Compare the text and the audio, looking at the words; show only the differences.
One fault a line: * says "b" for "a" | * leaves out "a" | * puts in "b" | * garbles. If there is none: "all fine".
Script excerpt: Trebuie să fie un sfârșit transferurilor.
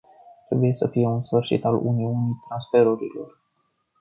* puts in "al uniunii"